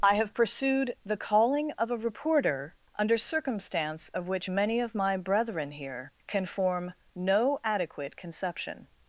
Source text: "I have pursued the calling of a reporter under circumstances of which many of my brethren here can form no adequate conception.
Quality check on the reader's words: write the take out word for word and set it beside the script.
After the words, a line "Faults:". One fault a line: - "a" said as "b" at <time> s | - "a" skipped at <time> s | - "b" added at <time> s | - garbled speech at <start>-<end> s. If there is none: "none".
"I have pursued the calling of a reporter under circumstance of which many of my brethren here can form no adequate conception.
Faults:
- "circumstances" said as "circumstance" at 3.2 s